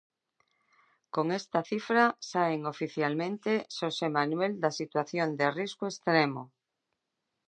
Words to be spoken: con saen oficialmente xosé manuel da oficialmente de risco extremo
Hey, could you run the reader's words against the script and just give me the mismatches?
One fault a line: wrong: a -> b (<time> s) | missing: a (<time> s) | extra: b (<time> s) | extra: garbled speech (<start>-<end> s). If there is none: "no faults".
extra: esta cifra (1.4 s)
wrong: oficialmente -> situación (4.8 s)